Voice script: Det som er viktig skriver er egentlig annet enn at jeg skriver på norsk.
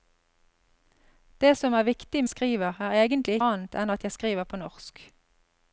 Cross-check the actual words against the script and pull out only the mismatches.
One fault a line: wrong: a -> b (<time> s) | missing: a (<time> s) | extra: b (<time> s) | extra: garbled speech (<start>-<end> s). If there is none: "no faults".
no faults